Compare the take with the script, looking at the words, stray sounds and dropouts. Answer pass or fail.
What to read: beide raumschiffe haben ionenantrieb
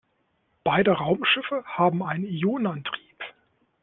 fail